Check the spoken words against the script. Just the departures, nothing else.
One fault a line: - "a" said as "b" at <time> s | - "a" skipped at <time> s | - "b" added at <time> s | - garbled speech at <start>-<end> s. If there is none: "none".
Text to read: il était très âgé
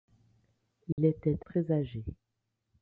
none